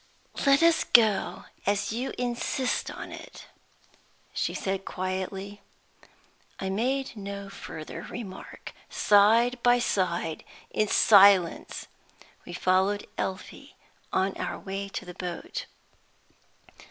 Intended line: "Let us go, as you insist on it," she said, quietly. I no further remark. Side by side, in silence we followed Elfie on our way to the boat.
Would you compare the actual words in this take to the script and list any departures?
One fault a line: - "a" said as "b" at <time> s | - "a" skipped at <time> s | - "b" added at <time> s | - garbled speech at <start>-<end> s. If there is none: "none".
- "made" added at 6.7 s